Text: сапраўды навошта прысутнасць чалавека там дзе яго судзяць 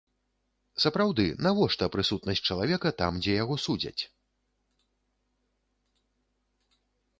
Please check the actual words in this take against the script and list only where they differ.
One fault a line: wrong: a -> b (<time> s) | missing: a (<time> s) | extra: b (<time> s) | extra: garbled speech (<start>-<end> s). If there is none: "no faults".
no faults